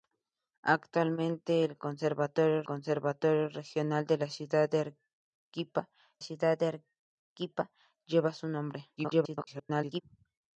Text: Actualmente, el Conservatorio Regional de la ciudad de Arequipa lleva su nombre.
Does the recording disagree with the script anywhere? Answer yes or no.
yes